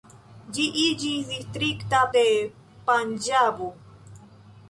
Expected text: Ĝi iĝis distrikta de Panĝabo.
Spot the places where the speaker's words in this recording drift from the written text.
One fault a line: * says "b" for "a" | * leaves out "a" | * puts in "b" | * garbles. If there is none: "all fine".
all fine